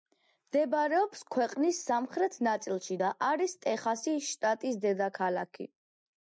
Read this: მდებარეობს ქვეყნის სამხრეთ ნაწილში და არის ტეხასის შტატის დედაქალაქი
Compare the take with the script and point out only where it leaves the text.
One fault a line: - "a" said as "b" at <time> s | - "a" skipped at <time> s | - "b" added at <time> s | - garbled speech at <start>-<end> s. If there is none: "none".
none